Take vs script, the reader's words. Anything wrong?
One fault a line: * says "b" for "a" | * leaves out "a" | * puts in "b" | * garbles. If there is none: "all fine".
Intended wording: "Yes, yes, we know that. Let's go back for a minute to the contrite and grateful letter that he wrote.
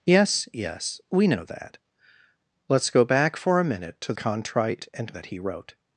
* leaves out "the"
* leaves out "grateful letter"